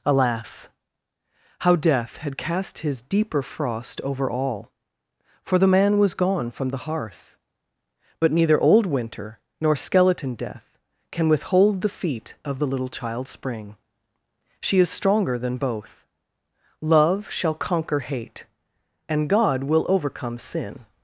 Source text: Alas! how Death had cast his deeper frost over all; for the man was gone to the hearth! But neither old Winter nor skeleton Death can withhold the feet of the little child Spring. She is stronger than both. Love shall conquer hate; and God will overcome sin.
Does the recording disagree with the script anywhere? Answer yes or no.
yes